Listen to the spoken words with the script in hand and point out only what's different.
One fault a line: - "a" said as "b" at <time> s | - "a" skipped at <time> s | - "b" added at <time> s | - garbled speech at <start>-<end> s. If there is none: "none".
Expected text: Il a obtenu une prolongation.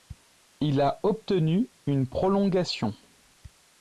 none